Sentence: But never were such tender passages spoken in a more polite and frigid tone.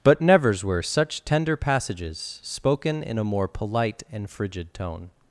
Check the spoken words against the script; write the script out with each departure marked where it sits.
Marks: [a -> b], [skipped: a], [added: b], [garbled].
But [never -> nevers] were such tender passages spoken in a more polite and frigid tone.